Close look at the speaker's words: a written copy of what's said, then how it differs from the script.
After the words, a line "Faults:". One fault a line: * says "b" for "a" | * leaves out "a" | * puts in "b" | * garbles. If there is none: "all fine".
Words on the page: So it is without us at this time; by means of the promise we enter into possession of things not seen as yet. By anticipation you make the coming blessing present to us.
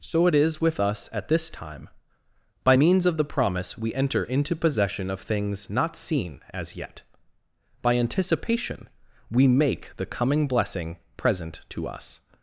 So it is with us at this time; by means of the promise we enter into possession of things not seen as yet. By anticipation we make the coming blessing present to us.
Faults:
* says "with" for "without"
* says "we" for "you"